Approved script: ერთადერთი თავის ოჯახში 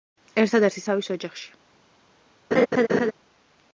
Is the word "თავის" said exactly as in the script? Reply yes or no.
yes